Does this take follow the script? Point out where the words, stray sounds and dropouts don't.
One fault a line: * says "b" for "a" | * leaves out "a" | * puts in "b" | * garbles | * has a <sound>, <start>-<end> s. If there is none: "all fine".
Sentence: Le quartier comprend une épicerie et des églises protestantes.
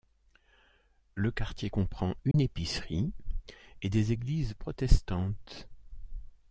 * has a dropout, 2.3-2.3 s